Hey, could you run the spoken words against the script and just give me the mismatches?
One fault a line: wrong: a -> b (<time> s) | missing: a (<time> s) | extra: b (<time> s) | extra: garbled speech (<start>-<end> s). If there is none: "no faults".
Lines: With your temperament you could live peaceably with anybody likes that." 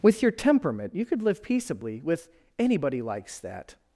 no faults